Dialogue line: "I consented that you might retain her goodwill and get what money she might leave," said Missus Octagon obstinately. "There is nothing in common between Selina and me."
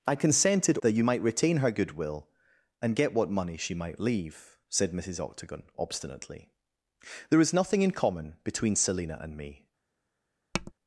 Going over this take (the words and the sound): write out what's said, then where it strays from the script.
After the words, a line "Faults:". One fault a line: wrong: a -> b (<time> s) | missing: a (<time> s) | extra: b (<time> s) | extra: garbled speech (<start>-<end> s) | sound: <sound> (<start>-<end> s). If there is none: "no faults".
"I consented that you might retain her goodwill and get what money she might leave," said Missus Octagon obstinately. "There is nothing in common between Selina and me."
Faults:
sound: tap (10.5-10.7 s)